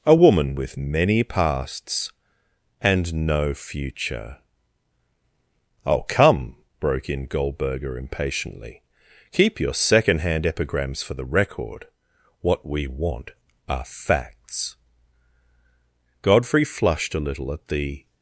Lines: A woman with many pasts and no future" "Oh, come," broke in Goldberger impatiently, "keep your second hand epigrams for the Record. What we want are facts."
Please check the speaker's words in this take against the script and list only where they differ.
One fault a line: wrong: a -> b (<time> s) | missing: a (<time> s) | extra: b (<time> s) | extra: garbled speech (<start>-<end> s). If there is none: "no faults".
extra: Godfrey flushed a little at the (16.2 s)